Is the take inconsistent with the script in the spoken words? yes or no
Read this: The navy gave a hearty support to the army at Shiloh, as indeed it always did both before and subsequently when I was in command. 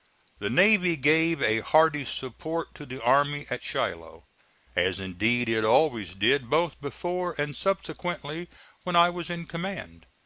no